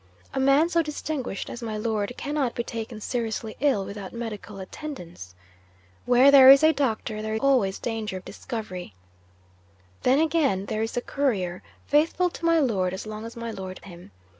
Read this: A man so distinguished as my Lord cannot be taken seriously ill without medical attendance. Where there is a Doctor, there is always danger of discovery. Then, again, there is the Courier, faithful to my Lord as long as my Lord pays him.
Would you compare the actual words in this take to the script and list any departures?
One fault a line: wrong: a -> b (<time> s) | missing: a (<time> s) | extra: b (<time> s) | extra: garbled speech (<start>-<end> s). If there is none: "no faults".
missing: is (7.3 s)
missing: pays (13.8 s)